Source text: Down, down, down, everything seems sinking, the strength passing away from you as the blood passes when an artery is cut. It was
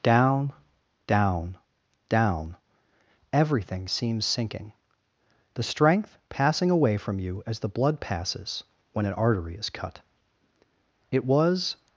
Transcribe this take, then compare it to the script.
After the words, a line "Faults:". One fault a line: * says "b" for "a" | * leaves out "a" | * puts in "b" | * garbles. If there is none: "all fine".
Down, down, down, everything seems sinking, the strength passing away from you as the blood passes when an artery is cut. It was
Faults:
all fine